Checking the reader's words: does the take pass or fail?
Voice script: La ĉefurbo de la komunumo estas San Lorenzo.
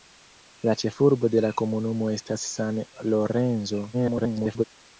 fail